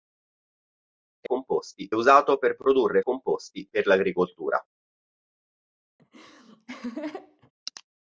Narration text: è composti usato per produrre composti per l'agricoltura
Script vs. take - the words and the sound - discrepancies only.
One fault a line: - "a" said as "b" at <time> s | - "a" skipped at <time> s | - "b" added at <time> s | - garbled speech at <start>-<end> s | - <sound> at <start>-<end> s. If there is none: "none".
- laugh at 6.0-7.5 s